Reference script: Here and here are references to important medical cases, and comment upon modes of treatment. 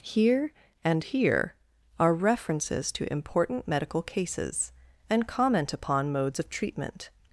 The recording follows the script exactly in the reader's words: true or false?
true